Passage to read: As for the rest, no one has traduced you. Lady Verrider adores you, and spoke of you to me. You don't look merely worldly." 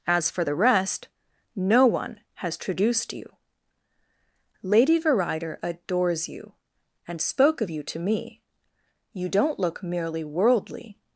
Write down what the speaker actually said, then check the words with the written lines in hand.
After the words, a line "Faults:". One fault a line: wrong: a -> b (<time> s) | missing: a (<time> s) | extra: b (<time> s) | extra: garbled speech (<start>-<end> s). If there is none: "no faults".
As for the rest, no one has traduced you. Lady Verrider adores you, and spoke of you to me. You don't look merely worldly."
Faults:
no faults